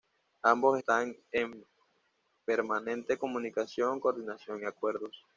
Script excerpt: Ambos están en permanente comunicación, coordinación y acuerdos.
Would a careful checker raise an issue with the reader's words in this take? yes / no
no